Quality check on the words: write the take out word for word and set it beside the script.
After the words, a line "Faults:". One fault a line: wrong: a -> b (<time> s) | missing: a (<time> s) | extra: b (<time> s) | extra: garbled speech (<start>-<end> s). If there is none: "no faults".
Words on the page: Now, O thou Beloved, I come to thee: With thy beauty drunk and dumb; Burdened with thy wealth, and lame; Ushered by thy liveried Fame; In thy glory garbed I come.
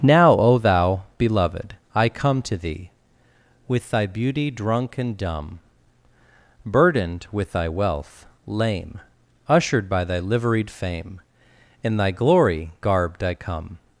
Now, O thou Beloved, I come to thee: With thy beauty drunk and dumb; Burdened with thy wealth, lame; Ushered by thy liveried Fame; In thy glory garbed I come.
Faults:
missing: and (8.2 s)